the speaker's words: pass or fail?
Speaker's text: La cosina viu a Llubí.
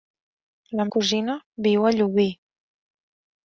pass